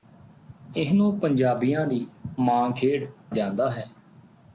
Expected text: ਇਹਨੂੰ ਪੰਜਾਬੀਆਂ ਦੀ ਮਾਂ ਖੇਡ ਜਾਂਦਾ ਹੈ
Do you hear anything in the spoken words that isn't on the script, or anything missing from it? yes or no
no